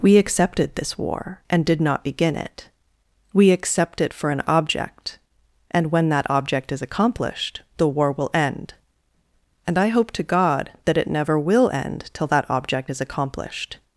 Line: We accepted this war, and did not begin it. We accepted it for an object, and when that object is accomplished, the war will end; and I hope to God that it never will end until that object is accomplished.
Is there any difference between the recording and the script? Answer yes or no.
yes